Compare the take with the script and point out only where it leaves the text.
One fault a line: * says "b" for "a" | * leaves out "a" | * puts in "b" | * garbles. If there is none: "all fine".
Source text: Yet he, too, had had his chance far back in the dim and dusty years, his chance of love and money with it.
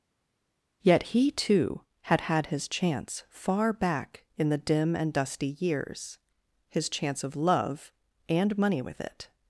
all fine